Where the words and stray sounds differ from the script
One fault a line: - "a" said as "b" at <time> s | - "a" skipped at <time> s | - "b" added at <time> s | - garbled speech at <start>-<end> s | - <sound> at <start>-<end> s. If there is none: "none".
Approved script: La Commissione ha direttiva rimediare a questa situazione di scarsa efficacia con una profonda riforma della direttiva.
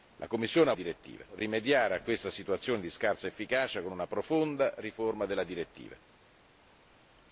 none